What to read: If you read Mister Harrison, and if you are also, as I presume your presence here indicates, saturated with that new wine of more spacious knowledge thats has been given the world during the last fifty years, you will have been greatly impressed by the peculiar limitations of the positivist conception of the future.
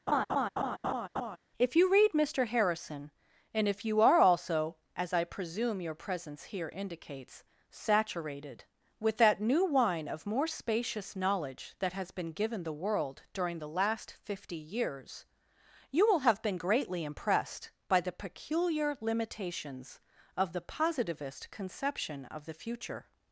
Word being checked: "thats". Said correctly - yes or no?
no